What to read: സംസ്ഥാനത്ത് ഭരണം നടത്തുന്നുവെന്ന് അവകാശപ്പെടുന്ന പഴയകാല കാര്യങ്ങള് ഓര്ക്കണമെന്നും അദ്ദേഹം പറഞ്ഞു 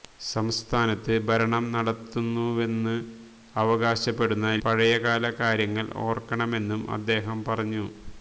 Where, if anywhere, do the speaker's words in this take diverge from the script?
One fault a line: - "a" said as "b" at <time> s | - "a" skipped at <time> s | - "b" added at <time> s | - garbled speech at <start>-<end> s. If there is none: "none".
none